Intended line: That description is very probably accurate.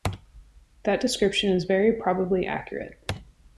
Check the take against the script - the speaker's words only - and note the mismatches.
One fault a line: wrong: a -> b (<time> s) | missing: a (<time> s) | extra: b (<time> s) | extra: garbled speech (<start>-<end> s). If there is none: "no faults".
no faults